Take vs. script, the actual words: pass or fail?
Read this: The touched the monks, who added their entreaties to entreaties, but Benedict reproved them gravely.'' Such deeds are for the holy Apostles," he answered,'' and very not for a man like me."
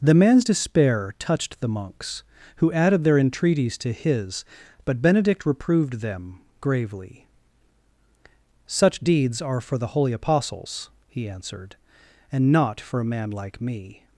fail